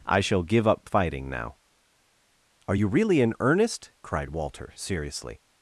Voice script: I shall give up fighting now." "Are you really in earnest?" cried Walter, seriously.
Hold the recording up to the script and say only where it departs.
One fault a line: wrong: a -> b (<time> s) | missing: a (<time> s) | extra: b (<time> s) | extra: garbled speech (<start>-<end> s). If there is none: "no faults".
no faults